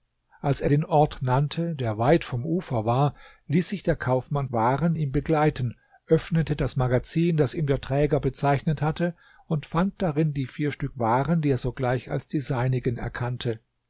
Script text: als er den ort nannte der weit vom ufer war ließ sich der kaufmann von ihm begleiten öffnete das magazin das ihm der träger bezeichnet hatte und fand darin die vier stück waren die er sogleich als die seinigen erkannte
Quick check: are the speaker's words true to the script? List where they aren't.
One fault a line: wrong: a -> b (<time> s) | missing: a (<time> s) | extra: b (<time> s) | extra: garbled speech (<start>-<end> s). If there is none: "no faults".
wrong: von -> waren (4.5 s)